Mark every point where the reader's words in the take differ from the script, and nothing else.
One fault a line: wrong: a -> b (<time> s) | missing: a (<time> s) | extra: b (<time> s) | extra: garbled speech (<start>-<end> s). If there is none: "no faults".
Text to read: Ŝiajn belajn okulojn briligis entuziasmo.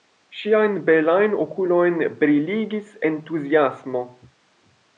no faults